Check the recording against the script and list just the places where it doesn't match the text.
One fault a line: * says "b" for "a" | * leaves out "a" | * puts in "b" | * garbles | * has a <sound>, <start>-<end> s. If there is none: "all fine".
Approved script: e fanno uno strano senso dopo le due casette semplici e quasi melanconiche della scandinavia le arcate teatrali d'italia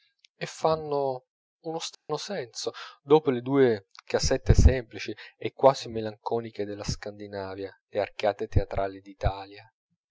* has a dropout, 1.9-2.1 s